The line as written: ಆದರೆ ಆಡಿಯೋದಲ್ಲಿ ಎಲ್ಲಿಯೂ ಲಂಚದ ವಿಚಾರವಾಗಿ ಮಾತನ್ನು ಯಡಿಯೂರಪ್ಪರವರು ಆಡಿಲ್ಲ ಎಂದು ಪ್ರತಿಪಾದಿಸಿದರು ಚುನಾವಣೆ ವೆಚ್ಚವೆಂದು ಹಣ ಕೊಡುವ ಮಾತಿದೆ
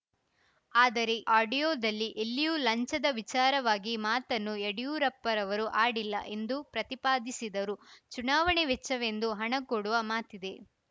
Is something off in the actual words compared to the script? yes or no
no